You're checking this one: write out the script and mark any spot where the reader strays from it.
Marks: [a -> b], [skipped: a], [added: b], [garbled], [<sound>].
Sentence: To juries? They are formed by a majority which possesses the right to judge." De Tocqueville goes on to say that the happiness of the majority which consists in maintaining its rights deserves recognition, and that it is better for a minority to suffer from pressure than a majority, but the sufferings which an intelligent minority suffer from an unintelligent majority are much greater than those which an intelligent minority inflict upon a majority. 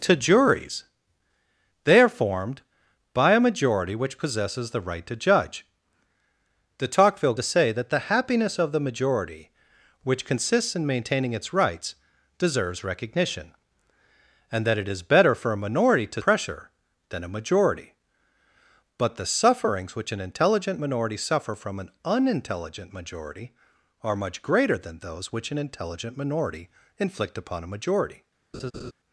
To juries? They are formed by a majority which possesses the right to judge." De Tocqueville [skipped: goes on] to say that the happiness of the majority which consists in maintaining its rights deserves recognition, and that it is better for a minority to [skipped: suffer from] pressure than a majority, but the sufferings which an intelligent minority suffer from an unintelligent majority are much greater than those which an intelligent minority inflict upon a majority. [laugh]